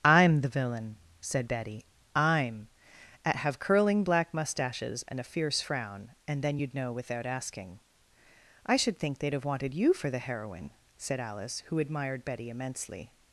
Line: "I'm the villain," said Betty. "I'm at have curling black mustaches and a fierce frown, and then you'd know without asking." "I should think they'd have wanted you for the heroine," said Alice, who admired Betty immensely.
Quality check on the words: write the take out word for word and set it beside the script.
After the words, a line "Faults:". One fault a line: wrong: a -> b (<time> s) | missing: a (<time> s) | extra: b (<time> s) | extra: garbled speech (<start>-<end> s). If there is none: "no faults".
"I'm the villain," said Betty. "I'm at have curling black mustaches and a fierce frown, and then you'd know without asking." "I should think they'd have wanted you for the heroine," said Alice, who admired Betty immensely.
Faults:
no faults